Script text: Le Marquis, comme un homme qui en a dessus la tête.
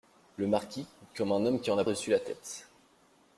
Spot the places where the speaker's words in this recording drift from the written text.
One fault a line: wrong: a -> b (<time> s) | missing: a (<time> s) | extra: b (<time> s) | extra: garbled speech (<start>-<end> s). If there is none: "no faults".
no faults